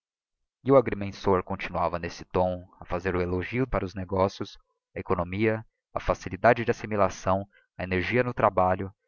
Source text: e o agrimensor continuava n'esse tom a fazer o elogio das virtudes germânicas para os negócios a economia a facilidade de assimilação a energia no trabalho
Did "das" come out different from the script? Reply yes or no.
yes